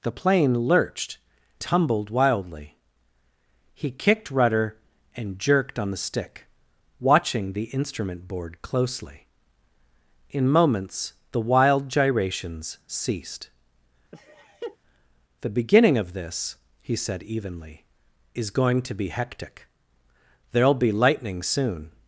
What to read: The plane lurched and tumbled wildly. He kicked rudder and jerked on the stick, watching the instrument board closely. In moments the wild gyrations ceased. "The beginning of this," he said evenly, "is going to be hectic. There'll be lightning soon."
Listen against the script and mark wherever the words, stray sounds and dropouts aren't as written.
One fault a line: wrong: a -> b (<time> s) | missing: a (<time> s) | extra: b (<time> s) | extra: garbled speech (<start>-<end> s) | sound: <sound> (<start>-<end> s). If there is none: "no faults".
missing: and (1.2 s)
sound: laugh (14.1-14.8 s)